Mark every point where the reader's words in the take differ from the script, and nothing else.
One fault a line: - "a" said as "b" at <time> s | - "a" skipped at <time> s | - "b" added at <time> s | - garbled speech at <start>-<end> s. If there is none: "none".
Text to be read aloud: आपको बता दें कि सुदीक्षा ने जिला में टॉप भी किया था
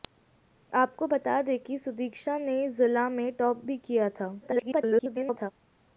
- garbled speech at 4.4-5.5 s